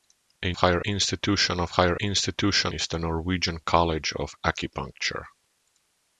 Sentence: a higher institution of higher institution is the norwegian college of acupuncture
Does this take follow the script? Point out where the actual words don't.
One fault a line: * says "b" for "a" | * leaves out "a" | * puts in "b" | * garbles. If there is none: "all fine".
all fine